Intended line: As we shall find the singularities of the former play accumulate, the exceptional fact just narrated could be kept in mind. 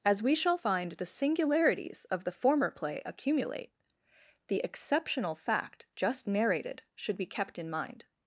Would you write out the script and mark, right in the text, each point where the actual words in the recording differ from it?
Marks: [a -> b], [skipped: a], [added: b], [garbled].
As we shall find the singularities of the former play accumulate, the exceptional fact just narrated [could -> should] be kept in mind.